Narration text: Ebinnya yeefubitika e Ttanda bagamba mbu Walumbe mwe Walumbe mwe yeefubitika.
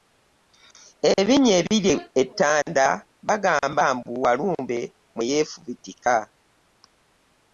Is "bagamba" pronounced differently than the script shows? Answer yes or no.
no